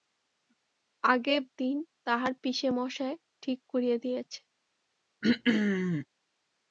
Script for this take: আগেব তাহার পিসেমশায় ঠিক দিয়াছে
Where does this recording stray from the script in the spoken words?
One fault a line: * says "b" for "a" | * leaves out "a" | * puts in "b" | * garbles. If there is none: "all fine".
* puts in "দিন"
* puts in "করিয়া"